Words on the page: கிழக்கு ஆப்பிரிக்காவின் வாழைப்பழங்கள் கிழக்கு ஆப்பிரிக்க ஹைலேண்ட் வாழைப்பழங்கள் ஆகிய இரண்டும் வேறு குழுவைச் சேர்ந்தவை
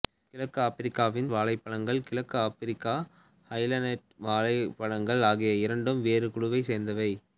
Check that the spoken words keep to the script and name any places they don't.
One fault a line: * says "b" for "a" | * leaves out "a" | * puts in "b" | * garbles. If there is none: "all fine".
all fine